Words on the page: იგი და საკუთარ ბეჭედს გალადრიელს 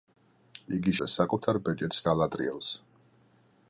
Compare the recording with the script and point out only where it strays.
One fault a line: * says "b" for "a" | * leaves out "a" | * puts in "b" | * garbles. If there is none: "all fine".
all fine